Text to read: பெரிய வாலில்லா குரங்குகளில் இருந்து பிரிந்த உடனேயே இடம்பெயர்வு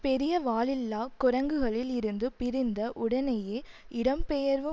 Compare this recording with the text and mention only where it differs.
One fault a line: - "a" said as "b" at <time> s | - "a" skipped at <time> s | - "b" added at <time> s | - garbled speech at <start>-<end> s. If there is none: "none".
none